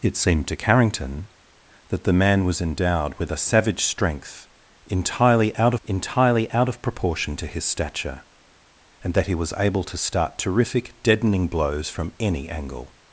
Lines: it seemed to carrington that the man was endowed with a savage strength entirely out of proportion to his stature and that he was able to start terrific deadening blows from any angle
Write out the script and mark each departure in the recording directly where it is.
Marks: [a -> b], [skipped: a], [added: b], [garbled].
it seemed to carrington that the man was endowed with a savage strength entirely out [added: entirely out] of proportion to his stature and that he was able to start terrific deadening blows from any angle